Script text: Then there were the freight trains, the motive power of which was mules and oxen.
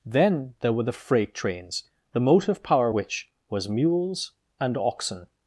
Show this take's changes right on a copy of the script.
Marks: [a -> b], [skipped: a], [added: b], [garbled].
Then there were the freight trains, the motive power [skipped: of] which was mules and oxen.